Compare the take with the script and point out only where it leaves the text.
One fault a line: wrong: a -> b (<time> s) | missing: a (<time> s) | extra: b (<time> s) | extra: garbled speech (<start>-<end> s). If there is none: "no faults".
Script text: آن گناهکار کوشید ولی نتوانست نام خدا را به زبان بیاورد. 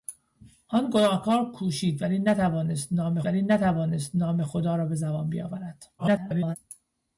extra: ولی نتوانست نام (3.2 s)
extra: garbled speech (6.0-6.6 s)